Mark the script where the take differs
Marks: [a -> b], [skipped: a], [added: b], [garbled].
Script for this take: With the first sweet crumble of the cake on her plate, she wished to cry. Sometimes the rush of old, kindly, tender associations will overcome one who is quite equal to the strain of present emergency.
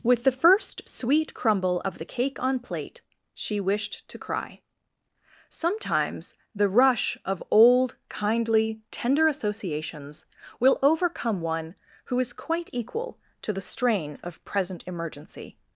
With the first sweet crumble of the cake on [skipped: her] plate, she wished to cry. Sometimes the rush of old, kindly, tender associations will overcome one who is quite equal to the strain of present emergency.